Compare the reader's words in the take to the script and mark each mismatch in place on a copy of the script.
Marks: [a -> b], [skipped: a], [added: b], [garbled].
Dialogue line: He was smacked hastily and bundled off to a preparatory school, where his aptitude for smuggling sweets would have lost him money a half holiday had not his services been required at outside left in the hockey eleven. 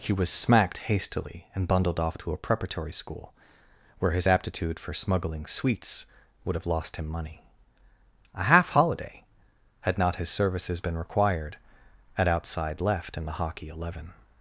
He was smacked hastily and bundled off to a preparatory school, where his aptitude for smuggling sweets would have lost him money a half holiday had not his services been required at outside left in the hockey eleven.